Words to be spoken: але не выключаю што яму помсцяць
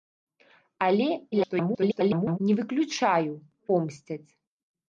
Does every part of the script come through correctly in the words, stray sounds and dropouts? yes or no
no